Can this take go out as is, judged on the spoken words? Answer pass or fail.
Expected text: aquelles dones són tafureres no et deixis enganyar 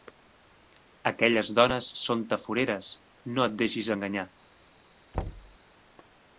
pass